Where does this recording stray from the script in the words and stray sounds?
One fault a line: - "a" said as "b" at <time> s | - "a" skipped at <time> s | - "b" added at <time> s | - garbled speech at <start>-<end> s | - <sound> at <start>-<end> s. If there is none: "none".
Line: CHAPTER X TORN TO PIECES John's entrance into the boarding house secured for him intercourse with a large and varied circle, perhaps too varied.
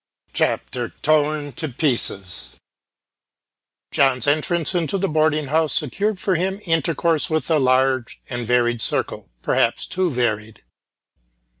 - "X" skipped at 0.9 s